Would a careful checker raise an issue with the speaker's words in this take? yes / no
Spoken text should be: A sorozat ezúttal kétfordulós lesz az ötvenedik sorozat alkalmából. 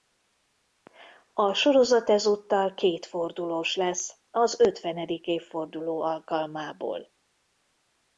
yes